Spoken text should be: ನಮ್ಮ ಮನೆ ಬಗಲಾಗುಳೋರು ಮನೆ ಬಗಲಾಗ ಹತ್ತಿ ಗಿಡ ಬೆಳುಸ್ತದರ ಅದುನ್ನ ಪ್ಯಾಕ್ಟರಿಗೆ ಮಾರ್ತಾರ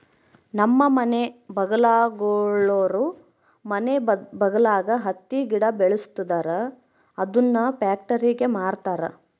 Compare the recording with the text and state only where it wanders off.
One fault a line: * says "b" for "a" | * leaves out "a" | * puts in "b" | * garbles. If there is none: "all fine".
all fine